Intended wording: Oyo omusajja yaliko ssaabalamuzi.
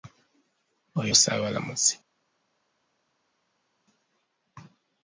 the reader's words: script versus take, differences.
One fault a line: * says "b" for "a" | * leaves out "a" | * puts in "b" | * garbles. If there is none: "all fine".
* leaves out "omusajja yaliko"